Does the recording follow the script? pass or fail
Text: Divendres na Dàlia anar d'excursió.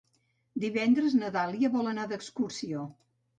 fail